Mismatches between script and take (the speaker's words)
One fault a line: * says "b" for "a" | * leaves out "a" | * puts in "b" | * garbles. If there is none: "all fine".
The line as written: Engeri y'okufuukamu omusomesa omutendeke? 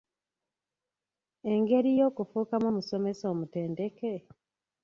all fine